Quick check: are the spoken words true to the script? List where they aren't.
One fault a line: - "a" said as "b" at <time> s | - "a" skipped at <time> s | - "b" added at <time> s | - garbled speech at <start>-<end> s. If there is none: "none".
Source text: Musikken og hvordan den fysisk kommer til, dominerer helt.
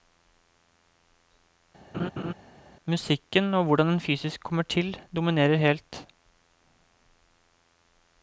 none